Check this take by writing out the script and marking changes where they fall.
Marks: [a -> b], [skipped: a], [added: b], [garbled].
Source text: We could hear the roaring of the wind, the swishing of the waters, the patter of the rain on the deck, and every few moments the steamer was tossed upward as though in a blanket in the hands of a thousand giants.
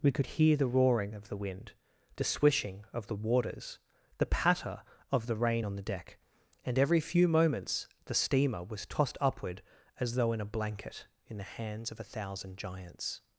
We could hear the roaring of the wind, the swishing of the waters, the patter of the rain on the deck, and every few moments the steamer was tossed upward as though in a blanket in the hands of a thousand giants.